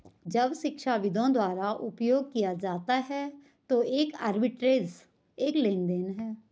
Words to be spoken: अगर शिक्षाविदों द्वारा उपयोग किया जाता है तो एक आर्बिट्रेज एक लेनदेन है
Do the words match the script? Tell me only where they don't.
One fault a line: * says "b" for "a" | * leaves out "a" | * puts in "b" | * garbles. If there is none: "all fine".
* says "जब" for "अगर"